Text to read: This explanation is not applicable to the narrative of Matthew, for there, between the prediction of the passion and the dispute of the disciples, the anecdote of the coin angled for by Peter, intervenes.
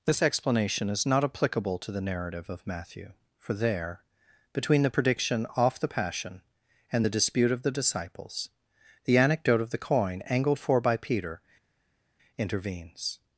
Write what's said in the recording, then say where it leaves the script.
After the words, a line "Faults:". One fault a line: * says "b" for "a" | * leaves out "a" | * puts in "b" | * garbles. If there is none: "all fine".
This explanation is not applicable to the narrative of Matthew, for there, between the prediction off the passion and the dispute of the disciples, the anecdote of the coin angled for by Peter, intervenes.
Faults:
* says "off" for "of"